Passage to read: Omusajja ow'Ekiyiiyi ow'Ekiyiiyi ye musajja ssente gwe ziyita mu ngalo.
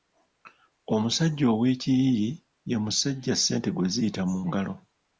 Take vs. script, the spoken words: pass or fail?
fail